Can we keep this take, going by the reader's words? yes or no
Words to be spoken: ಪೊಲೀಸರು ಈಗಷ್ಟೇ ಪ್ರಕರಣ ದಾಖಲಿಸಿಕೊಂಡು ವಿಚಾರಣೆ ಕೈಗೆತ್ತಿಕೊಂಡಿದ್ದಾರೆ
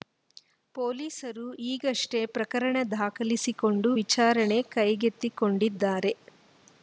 yes